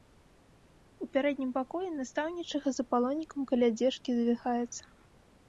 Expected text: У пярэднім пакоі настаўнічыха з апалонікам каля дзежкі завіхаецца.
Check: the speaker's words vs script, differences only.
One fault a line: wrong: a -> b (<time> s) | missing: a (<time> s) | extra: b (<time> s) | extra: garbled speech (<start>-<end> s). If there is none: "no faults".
no faults